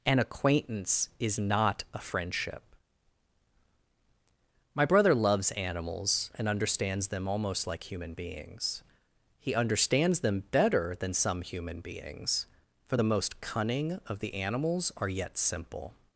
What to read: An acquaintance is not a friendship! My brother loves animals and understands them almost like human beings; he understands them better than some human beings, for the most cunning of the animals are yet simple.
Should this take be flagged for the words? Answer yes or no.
no